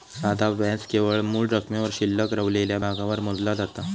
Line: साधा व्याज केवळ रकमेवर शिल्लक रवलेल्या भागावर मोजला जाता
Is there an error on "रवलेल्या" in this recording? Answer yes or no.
no